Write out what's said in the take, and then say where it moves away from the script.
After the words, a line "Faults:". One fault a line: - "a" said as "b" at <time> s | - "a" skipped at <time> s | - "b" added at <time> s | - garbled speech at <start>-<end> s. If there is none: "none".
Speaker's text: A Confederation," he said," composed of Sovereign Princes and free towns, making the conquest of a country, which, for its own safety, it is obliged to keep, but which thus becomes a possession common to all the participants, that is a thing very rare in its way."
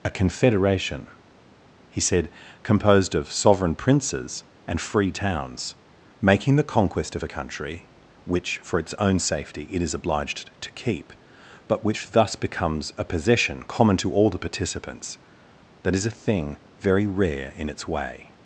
A Confederation," he said," composed of Sovereign Princes and free towns, making the conquest of a country, which, for its own safety, it is obliged to keep, but which thus becomes a possession common to all the participants, that is a thing very rare in its way."
Faults:
none